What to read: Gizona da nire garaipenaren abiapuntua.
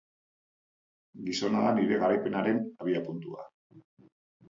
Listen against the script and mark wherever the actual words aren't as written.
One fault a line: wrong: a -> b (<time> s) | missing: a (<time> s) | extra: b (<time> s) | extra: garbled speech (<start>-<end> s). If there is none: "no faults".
no faults